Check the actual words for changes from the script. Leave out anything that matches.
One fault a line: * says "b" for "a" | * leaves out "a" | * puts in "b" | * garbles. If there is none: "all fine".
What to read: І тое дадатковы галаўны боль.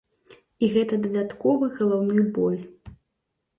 * says "гэта" for "тое"